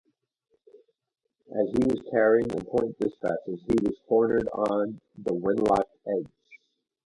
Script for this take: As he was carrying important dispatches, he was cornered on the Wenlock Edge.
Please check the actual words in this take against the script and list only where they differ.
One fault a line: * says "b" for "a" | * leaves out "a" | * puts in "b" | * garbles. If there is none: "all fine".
all fine